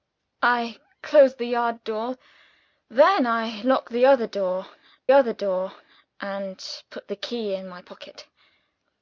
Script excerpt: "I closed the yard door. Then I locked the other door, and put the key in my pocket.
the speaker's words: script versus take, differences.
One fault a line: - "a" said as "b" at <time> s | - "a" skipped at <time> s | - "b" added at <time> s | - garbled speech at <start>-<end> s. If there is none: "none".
- "other door" added at 5.1 s